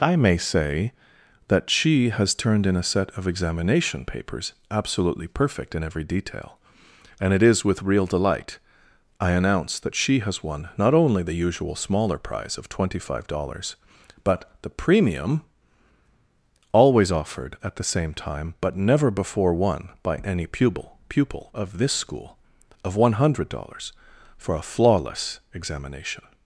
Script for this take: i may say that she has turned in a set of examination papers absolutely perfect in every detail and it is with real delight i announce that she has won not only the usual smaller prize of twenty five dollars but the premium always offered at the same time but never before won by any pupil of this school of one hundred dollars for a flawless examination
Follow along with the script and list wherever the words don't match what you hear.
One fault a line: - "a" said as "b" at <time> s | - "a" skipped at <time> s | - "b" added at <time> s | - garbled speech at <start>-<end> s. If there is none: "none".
- "pupil" added at 21.1 s